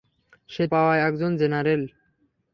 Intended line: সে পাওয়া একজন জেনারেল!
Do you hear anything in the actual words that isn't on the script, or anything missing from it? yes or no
no